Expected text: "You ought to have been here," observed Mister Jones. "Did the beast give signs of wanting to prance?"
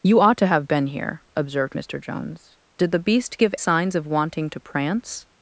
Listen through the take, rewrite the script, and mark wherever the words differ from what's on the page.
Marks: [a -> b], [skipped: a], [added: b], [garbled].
"You ought to have been here," observed Mister Jones. "Did the beast give signs of wanting to prance?"